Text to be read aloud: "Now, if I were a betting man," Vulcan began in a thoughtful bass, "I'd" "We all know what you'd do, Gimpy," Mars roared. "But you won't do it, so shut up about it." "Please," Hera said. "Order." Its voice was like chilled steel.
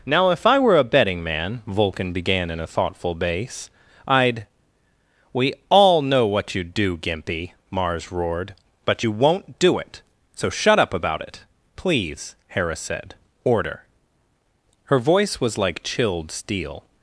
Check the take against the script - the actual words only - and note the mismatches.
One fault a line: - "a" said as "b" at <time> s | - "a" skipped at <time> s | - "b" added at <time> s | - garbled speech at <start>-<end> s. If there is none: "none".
- "Its" said as "Her" at 14.8 s